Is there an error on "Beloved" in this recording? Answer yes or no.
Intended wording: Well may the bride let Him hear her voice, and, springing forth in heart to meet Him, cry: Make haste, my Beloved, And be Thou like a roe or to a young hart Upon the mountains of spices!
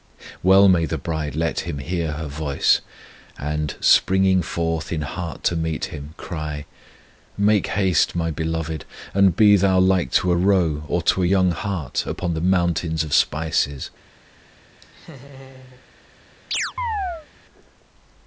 no